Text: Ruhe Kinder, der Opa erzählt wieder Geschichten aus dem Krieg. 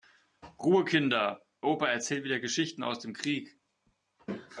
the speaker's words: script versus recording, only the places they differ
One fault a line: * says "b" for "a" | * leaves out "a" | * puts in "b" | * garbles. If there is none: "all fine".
* leaves out "der"